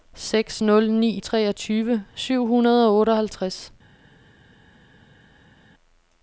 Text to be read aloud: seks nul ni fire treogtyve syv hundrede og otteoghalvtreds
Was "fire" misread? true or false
true